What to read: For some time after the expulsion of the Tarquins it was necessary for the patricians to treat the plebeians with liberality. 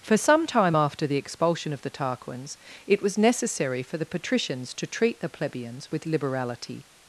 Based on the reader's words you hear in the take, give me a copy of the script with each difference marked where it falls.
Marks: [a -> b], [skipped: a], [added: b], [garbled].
For some time after the expulsion of the Tarquins it was necessary for the patricians to treat the plebeians with liberality.